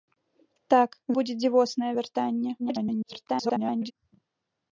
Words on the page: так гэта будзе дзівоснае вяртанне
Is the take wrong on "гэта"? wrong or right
wrong